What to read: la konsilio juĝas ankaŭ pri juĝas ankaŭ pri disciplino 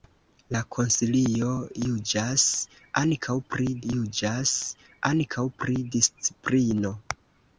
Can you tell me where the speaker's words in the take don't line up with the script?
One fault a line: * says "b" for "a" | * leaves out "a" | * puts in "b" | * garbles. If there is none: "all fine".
all fine